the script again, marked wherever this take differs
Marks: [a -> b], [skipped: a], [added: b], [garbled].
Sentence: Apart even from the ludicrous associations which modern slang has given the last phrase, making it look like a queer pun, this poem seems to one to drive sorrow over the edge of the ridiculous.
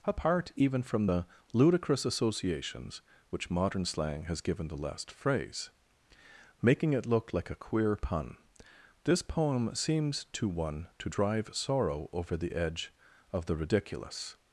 Apart even from the ludicrous associations which modern slang has given the last phrase, making it look like a queer pun, this poem seems to one to drive sorrow over the edge of the ridiculous.